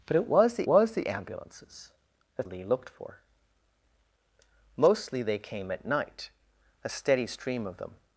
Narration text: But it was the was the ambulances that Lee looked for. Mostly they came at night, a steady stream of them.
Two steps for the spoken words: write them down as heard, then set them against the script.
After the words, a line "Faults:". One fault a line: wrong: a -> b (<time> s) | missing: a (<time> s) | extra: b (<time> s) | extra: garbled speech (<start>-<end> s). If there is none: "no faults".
But it was the was the ambulances that Lee looked for. Mostly they came at night, a steady stream of them.
Faults:
no faults